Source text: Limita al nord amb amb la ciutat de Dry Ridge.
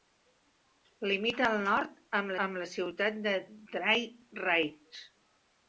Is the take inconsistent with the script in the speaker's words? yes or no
no